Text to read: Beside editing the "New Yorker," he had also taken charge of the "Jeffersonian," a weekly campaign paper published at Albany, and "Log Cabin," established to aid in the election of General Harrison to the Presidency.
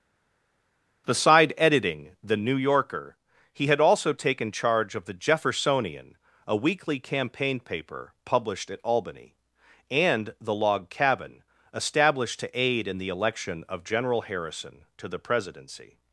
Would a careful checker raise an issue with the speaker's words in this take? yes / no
yes